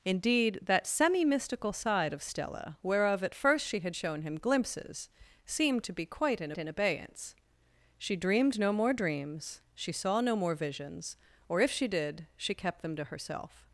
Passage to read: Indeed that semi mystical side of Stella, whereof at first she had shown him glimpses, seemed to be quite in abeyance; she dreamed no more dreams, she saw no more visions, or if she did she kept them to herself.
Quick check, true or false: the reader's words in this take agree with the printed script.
false